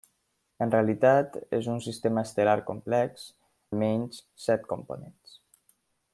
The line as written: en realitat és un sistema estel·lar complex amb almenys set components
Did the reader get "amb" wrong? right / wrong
wrong